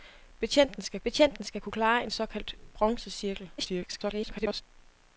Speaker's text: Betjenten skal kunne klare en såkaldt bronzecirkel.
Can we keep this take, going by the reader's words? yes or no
no